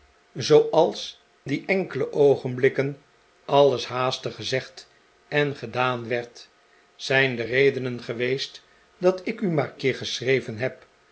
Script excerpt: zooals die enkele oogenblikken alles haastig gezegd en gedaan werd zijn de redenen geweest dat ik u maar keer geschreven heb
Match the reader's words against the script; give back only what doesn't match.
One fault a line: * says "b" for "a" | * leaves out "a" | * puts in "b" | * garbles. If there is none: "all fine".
all fine